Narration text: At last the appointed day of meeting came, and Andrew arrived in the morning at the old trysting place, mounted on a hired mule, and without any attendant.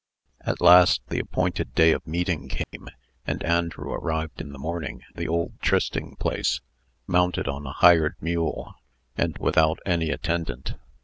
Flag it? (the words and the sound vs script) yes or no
yes